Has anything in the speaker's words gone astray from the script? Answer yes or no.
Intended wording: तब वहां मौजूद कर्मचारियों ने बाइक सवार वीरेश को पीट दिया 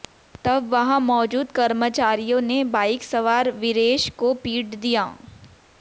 no